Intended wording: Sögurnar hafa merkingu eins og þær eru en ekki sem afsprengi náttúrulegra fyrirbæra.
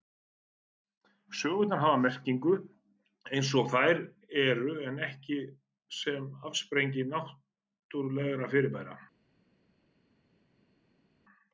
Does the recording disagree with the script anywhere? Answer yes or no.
no